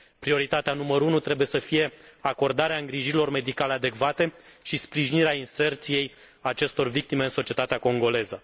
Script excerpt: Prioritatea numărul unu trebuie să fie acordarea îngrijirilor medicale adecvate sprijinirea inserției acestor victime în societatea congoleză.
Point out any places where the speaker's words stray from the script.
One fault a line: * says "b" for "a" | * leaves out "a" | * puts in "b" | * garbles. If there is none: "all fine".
* puts in "și"